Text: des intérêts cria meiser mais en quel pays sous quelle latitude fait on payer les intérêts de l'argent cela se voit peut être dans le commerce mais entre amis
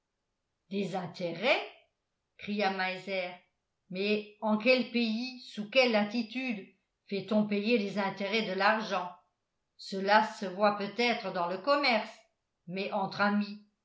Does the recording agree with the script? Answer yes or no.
yes